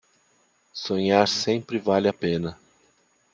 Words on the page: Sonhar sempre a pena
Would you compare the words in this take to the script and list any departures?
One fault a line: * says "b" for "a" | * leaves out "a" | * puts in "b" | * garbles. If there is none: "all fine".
* puts in "vale"